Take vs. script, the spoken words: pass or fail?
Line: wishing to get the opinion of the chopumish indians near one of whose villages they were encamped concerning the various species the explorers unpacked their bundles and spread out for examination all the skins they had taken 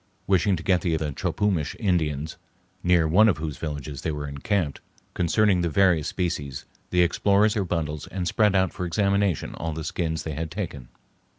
fail